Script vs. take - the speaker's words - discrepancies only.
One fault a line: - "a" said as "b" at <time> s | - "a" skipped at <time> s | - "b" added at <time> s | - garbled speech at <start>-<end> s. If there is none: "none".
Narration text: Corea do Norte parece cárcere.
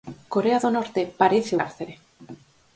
none